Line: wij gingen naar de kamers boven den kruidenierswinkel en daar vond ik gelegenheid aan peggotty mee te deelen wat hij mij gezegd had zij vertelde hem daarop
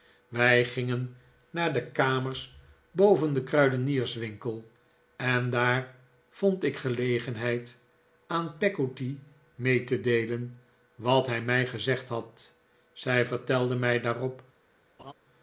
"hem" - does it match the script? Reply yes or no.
no